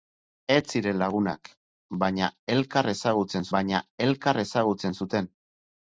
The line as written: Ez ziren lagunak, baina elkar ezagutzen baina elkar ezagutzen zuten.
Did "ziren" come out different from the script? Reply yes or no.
no